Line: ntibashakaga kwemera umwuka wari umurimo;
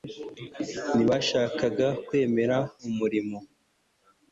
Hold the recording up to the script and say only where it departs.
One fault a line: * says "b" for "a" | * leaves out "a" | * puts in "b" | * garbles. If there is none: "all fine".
* leaves out "umwuka wari"